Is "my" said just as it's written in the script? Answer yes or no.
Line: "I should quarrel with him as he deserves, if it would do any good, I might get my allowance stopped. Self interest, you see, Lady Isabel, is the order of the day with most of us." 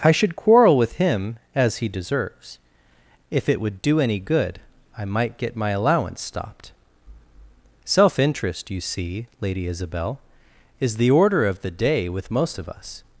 yes